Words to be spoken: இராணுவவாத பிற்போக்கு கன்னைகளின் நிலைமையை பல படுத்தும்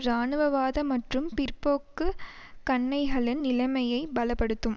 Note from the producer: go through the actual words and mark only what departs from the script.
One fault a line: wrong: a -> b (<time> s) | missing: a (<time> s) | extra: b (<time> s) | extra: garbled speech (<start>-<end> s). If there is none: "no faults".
extra: மற்றும் (0.8 s)